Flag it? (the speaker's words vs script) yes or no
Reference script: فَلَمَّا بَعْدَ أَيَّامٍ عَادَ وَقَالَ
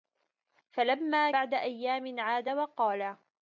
no